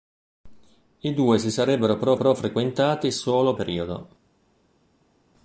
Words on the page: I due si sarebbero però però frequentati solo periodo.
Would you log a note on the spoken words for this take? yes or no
no